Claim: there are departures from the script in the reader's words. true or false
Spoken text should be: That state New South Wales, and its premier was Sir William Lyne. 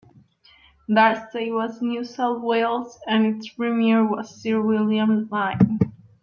true